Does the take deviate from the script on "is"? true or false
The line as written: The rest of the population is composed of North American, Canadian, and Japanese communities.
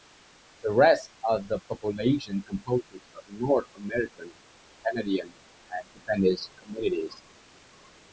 true